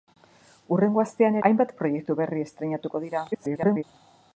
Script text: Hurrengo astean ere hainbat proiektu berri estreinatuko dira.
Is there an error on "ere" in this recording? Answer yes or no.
yes